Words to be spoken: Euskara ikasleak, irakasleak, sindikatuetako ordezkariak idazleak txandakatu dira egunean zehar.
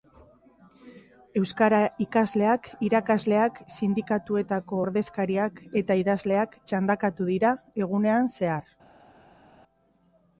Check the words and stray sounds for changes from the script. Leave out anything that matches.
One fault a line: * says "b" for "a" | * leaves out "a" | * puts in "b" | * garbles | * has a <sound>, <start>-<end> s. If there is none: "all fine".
* puts in "eta"